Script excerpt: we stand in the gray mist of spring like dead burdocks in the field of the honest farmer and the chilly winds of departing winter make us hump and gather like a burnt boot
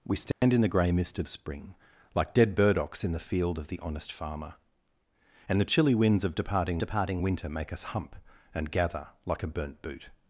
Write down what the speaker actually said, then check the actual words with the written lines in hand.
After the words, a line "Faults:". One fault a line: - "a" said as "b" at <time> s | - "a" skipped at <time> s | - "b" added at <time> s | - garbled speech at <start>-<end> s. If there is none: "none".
we stand in the gray mist of spring like dead burdocks in the field of the honest farmer and the chilly winds of departing departing winter make us hump and gather like a burnt boot
Faults:
- "departing" added at 6.8 s